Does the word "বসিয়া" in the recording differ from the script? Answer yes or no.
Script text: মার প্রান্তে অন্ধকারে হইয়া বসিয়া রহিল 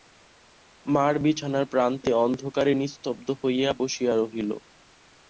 no